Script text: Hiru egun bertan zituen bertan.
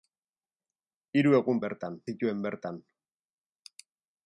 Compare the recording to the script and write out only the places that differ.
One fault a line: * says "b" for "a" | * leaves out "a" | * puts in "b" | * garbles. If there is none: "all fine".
all fine